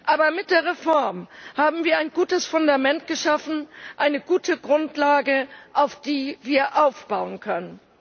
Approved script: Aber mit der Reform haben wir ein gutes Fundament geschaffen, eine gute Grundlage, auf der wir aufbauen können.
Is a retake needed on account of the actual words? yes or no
no